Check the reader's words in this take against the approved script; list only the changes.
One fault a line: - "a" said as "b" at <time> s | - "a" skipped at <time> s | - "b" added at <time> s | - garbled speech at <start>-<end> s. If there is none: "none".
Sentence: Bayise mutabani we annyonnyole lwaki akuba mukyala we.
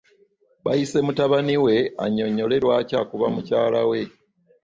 none